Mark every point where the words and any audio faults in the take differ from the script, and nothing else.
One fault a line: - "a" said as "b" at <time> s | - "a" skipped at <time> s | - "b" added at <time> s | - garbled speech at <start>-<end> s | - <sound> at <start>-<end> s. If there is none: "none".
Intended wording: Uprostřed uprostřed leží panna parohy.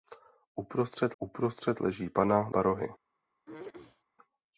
- throat clearing at 3.5-4.0 s